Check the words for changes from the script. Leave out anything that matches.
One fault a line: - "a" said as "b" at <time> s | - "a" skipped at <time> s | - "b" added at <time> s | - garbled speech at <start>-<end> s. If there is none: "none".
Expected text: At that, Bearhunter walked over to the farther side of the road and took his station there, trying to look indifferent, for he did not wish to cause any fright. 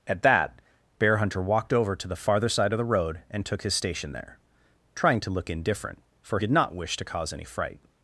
- "he" skipped at 6.4 s